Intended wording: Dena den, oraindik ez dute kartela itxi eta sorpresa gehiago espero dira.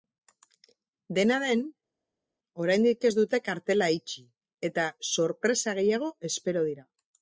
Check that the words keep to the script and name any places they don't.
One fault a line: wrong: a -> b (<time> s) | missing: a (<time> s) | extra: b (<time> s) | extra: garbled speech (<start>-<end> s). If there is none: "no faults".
no faults